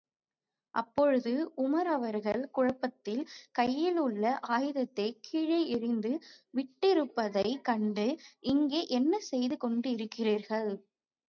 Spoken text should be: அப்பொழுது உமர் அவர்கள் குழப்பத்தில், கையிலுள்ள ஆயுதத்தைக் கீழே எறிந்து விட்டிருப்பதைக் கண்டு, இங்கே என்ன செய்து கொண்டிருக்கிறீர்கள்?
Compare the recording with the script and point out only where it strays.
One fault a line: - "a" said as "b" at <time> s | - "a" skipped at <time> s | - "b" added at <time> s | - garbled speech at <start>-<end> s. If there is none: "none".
none